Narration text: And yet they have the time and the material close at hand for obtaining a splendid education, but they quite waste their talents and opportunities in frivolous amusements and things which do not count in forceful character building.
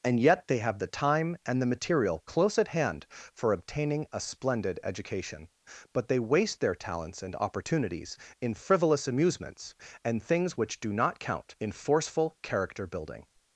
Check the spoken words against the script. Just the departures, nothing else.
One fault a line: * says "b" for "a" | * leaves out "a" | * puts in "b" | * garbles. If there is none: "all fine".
* leaves out "quite"